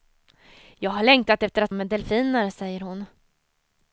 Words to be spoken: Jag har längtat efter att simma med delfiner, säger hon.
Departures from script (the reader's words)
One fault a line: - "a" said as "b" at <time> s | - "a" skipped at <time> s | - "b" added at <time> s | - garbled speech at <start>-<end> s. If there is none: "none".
- "simma" skipped at 1.7 s